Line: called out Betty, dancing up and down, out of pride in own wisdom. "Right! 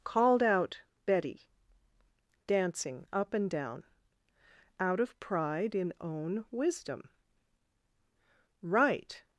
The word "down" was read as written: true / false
true